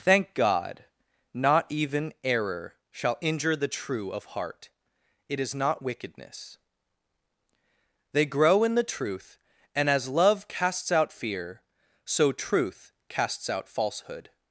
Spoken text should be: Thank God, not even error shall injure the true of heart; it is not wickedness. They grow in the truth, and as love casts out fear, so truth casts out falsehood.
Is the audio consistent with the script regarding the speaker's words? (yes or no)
yes